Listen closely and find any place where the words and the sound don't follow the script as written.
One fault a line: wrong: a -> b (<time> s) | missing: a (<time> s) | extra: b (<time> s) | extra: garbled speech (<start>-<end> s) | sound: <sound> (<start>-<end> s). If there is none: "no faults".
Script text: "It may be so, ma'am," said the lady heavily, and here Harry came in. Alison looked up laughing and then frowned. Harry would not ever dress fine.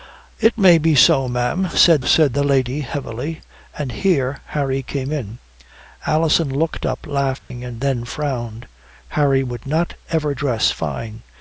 extra: said (2.0 s)
sound: dropout (7.4-7.5 s)